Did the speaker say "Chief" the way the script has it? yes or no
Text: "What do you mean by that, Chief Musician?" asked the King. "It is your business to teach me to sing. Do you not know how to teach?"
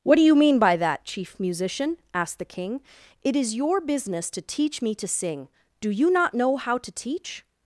yes